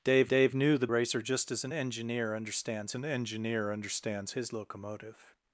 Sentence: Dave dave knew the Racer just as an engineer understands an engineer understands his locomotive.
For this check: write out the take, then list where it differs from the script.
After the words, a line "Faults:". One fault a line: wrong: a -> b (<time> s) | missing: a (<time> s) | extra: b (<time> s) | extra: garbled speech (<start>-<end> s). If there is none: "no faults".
Dave dave knew the Racer just as an engineer understands an engineer understands his locomotive.
Faults:
no faults